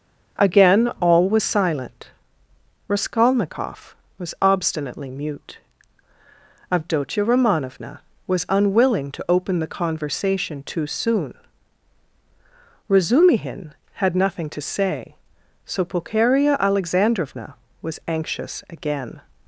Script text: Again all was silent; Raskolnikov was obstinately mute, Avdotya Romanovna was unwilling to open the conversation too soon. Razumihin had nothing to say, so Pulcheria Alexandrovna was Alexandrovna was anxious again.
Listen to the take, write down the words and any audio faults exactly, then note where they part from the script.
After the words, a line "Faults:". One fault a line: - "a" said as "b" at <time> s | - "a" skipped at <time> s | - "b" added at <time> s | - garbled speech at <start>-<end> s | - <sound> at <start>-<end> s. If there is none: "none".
Again all was silent; Raskolnikov was obstinately mute, Avdotya Romanovna was unwilling to open the conversation too soon. Razumihin had nothing to say, so Pulcheria Alexandrovna was anxious again.
Faults:
- "Alexandrovna was" skipped at 18.0 s